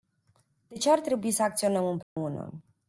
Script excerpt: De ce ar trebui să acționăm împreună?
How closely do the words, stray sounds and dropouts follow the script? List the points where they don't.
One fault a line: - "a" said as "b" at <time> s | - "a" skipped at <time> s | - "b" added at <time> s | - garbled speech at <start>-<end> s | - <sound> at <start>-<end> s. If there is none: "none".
- dropout at 2.0-2.2 s